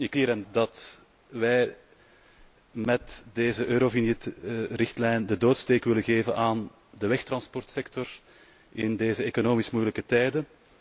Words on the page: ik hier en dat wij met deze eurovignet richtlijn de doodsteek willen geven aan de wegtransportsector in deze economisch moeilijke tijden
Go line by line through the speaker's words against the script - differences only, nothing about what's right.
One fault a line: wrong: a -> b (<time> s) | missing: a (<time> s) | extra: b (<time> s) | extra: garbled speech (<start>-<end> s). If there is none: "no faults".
no faults